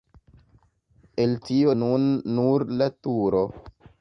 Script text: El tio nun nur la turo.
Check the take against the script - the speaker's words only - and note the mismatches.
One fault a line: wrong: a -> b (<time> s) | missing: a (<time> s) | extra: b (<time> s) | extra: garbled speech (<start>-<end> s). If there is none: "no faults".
no faults